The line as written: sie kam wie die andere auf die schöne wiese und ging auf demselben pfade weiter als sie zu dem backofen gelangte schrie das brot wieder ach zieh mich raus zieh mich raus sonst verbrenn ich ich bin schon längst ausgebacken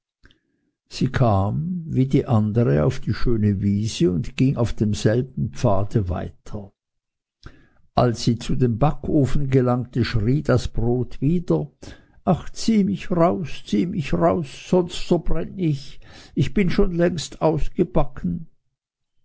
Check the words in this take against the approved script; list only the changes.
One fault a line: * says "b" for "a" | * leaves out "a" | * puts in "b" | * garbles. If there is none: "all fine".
all fine